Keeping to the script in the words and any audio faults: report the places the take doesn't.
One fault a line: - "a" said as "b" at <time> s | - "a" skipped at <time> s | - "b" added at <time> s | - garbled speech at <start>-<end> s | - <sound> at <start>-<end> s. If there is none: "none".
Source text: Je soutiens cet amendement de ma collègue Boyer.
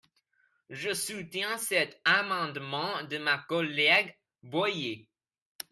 none